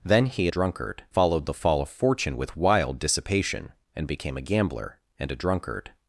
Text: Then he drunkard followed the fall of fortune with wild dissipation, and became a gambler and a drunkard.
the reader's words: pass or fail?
pass